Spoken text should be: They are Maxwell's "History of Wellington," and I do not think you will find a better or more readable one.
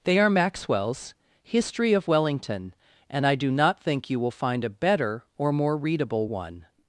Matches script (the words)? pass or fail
pass